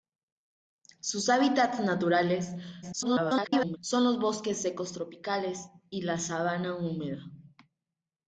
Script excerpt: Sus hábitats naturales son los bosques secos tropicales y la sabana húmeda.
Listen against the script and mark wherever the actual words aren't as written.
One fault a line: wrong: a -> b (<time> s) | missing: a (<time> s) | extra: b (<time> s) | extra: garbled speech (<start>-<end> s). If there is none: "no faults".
extra: garbled speech (2.8-3.8 s)